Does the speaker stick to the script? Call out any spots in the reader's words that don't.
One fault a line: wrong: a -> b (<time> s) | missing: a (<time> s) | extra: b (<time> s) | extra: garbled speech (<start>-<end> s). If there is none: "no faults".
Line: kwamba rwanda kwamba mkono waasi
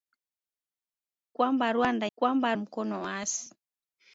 no faults